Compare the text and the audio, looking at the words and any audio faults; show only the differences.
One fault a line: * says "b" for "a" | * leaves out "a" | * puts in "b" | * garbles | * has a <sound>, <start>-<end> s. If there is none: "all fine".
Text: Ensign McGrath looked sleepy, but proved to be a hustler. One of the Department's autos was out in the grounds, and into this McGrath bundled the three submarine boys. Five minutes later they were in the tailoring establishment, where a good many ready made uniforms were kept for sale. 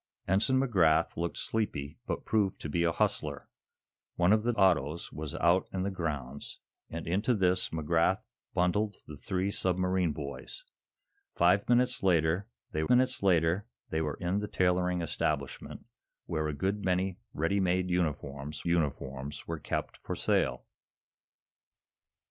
* leaves out "Department's"
* puts in "minutes later they"
* puts in "uniforms"